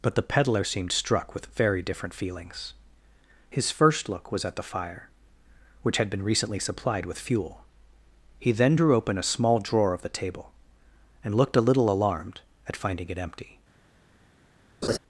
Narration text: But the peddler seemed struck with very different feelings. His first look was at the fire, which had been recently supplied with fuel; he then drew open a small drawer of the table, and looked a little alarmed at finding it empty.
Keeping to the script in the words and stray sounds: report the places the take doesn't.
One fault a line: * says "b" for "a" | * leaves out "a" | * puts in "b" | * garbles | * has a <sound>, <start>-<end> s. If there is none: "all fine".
* has a laugh, 14.8-15.0 s